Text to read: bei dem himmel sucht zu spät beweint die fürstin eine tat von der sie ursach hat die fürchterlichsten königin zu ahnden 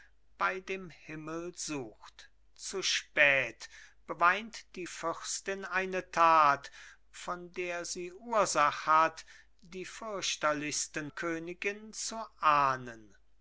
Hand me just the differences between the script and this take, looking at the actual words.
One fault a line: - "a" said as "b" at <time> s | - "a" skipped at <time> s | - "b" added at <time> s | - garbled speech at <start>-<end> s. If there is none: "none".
none